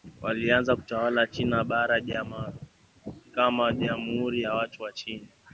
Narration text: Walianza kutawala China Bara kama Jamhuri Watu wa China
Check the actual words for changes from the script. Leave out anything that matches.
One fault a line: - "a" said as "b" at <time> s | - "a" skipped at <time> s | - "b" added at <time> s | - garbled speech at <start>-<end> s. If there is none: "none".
- "ya" added at 4.4 s